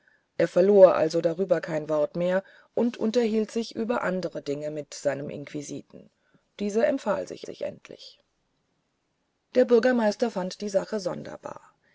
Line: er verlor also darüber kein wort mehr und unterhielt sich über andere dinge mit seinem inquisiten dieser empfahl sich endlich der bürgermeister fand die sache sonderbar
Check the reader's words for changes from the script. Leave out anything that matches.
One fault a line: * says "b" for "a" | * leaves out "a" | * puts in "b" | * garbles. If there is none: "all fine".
* puts in "sich"